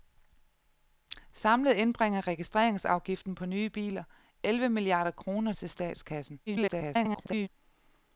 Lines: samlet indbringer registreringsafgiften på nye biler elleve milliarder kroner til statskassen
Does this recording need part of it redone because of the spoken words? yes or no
yes